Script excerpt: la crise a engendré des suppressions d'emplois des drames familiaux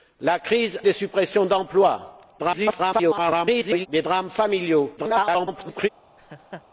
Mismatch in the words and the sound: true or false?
true